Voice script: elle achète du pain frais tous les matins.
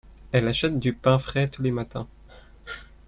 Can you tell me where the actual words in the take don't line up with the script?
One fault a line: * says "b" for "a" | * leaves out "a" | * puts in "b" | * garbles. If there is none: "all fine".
all fine